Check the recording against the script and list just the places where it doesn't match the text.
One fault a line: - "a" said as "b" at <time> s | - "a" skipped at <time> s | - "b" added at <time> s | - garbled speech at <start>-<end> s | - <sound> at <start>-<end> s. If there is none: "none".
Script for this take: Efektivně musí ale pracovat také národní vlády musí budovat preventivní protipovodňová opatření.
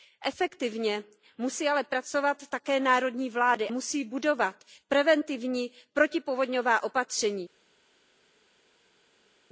none